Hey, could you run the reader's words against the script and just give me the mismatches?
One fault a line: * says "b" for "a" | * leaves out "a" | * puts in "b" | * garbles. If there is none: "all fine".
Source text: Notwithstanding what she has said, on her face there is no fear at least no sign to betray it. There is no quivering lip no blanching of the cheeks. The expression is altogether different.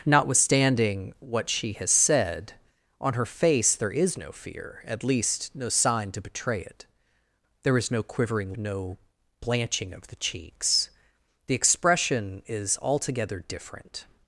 * leaves out "lip"